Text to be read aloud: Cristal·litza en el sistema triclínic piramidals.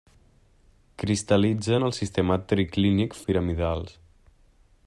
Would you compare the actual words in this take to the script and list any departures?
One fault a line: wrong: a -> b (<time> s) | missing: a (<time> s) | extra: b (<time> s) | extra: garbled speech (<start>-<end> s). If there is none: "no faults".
no faults